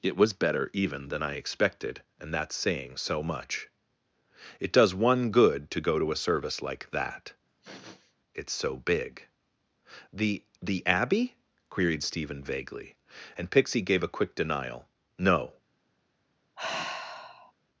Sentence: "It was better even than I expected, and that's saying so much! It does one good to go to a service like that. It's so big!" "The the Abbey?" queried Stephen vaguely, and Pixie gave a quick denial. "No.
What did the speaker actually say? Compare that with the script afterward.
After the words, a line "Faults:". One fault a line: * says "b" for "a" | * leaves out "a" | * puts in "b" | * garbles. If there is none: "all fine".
"It was better even than I expected, and that's saying so much! It does one good to go to a service like that. It's so big!" "The the Abbey?" queried Stephen vaguely, and Pixie gave a quick denial. "No.
Faults:
all fine